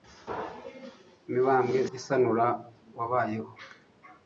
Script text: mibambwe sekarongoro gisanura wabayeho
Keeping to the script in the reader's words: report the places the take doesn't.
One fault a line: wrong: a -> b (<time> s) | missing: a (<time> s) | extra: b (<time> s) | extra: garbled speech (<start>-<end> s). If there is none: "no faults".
missing: sekarongoro (1.8 s)